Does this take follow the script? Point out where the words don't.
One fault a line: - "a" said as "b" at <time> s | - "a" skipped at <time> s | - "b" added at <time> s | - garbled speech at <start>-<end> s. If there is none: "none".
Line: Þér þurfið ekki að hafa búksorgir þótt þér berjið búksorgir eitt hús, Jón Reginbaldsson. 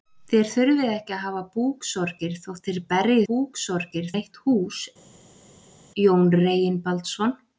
none